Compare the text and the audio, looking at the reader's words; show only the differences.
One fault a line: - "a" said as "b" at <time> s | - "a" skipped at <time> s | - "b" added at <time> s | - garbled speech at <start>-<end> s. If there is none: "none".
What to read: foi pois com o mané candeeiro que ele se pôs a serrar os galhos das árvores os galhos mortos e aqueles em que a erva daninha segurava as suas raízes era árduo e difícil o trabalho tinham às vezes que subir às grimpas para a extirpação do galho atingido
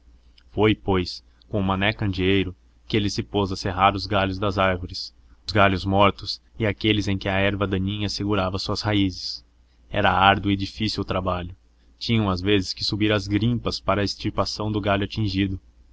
none